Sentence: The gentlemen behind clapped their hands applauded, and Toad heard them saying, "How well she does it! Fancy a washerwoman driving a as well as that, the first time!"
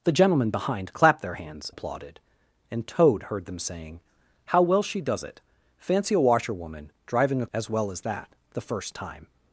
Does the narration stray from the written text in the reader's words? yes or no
no